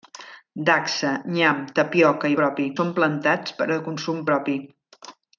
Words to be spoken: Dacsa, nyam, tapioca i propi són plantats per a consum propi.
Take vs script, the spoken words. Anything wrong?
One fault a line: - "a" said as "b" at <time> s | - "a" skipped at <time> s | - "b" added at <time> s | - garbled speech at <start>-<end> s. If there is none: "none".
none